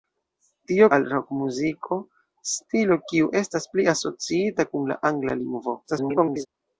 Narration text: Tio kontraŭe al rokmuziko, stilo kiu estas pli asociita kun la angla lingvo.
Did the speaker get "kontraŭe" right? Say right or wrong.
wrong